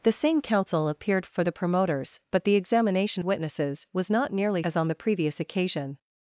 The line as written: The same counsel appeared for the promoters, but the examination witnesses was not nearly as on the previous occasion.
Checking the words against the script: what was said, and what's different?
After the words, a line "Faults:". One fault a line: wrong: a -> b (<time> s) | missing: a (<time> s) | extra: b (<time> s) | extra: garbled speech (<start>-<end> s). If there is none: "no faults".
The same counsel appeared for the promoters, but the examination witnesses was not nearly as on the previous occasion.
Faults:
no faults